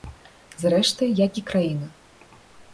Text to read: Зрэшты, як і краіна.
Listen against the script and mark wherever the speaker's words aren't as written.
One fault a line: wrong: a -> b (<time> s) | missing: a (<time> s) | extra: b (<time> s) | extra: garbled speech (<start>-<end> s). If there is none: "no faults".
no faults